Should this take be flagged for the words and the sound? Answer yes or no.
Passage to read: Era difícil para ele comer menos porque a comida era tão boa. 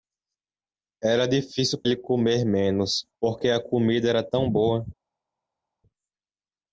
yes